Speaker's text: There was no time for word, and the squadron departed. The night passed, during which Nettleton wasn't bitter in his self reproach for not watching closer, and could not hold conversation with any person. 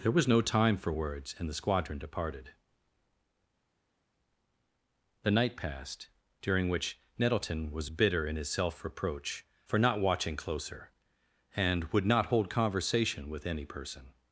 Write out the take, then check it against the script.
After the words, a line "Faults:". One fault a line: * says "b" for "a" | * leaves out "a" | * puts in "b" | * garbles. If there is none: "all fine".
There was no time for words, and the squadron departed. The night passed, during which Nettleton was bitter in his self reproach for not watching closer, and would not hold conversation with any person.
Faults:
* says "words" for "word"
* says "was" for "wasn't"
* says "would" for "could"